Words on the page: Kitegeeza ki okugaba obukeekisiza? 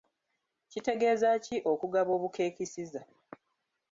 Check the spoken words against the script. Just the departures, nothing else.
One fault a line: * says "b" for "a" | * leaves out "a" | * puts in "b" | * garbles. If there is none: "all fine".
all fine